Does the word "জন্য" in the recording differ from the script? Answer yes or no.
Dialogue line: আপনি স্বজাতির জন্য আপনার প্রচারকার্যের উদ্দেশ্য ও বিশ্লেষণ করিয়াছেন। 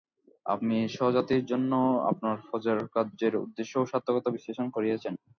no